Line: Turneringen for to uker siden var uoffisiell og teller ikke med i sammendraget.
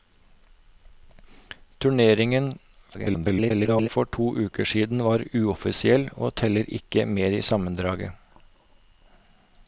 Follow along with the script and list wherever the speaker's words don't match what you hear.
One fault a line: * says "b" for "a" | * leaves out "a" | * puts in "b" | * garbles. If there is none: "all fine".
* garbles